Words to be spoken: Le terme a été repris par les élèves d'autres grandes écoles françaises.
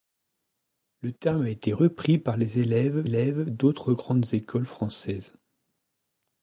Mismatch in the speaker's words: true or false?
true